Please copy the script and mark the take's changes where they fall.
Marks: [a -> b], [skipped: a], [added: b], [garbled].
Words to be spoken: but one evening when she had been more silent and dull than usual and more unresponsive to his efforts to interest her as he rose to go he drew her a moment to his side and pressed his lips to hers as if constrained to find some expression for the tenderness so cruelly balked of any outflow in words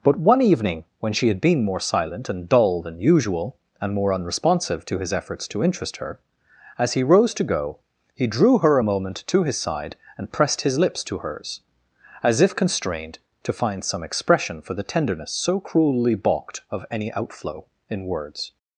but one evening when she had been more silent and dull than usual and more unresponsive to his efforts to interest her as he rose to go he drew her a moment to his side and pressed his lips to hers as if constrained to find some expression for the tenderness so cruelly balked of any outflow in words